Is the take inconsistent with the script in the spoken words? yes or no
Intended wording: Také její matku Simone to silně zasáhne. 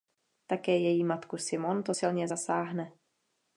no